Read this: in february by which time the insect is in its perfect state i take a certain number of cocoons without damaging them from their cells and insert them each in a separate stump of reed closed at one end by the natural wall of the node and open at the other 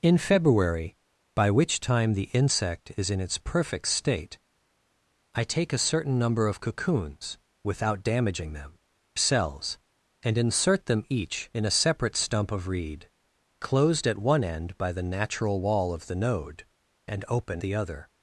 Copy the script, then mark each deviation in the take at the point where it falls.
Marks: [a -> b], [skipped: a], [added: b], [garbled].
in february by which time the insect is in its perfect state i take a certain number of cocoons without damaging them [skipped: from their] cells and insert them each in a separate stump of reed closed at one end by the natural wall of the node and open [skipped: at] the other